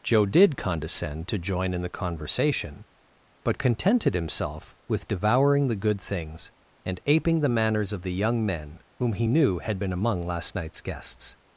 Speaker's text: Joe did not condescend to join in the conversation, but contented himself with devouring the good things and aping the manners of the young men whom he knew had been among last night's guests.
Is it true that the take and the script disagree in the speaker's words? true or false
true